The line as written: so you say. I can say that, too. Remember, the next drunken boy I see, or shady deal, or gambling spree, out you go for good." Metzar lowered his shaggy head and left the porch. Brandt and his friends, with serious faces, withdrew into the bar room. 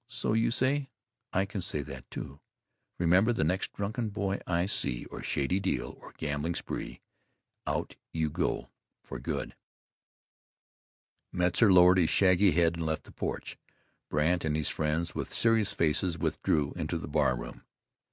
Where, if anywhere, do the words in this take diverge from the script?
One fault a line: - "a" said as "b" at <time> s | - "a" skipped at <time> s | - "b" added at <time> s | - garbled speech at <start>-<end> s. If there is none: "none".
none